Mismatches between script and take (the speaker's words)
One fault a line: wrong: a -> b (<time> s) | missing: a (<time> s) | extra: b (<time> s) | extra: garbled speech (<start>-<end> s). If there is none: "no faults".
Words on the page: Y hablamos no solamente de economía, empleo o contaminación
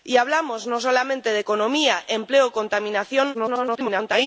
extra: garbled speech (3.3-4.3 s)